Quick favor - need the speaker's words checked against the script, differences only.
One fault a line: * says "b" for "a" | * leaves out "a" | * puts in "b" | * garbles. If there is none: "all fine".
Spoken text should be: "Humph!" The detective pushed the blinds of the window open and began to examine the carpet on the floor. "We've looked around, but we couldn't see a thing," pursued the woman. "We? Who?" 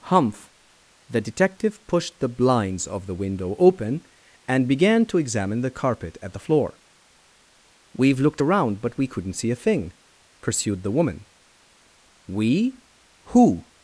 * says "at" for "on"